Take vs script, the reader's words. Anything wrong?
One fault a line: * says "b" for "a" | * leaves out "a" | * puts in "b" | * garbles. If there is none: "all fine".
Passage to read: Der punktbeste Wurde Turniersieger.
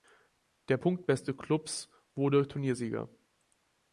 * puts in "Klubs"